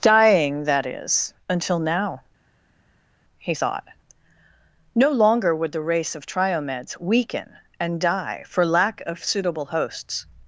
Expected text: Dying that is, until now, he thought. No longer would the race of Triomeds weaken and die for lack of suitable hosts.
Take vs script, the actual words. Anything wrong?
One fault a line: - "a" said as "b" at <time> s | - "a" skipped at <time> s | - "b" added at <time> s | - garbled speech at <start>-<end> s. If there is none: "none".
none